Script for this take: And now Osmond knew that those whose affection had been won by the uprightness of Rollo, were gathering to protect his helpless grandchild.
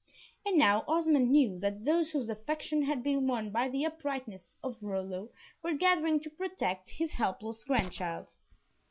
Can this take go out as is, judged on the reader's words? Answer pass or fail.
pass